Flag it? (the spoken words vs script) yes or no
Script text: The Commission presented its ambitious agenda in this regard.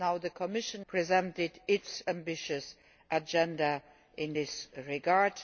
no